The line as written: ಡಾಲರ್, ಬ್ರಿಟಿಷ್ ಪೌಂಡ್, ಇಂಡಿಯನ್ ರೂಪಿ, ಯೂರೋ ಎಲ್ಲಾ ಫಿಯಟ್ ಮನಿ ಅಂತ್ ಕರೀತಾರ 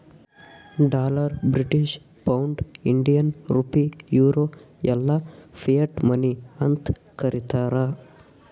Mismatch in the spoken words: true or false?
false